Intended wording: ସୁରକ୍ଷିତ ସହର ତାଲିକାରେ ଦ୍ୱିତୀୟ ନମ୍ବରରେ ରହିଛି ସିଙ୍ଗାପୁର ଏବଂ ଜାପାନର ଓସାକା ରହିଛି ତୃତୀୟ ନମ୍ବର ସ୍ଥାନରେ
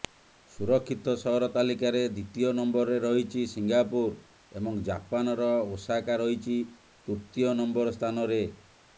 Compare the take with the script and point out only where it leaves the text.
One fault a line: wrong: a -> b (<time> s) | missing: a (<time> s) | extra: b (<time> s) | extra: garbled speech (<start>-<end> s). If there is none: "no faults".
no faults